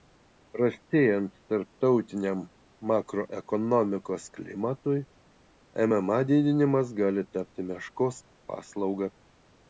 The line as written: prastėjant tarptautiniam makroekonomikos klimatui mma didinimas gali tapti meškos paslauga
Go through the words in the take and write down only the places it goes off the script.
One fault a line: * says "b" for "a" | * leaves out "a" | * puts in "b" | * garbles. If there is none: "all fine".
all fine